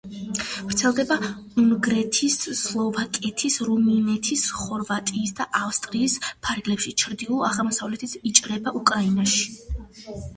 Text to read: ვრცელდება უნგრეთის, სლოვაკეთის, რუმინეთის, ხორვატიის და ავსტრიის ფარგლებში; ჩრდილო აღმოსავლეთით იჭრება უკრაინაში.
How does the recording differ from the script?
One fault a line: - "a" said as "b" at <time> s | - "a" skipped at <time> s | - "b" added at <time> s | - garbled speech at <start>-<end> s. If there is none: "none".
none